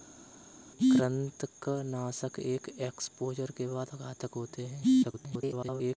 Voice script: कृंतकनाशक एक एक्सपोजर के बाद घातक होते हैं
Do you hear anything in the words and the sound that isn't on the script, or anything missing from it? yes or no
yes